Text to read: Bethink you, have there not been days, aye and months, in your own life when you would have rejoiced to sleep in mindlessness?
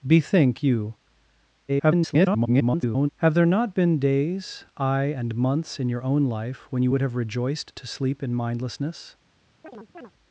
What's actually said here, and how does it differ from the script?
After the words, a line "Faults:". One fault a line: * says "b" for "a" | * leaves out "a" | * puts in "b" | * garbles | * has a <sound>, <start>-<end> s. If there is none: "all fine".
Bethink you, [garbled] have there not been days, aye and months, in your own life when you would have rejoiced to sleep in mindlessness?
Faults:
* garbles
* has a chirp, 9.6-10.1 s